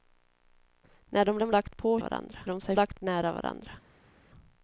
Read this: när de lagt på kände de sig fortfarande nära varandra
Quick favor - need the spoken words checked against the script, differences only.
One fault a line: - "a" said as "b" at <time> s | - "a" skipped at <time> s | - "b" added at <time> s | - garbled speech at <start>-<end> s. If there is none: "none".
- "de" added at 1.4 s
- "kände" said as "varandra" at 2.0 s
- "fortfarande" said as "lagt" at 2.7 s